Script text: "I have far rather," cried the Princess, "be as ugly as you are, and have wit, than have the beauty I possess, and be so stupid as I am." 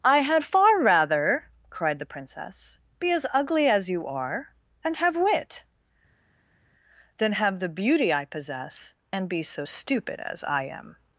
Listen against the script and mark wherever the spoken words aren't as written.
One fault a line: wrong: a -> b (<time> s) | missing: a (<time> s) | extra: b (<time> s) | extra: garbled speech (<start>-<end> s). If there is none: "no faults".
wrong: have -> had (0.2 s)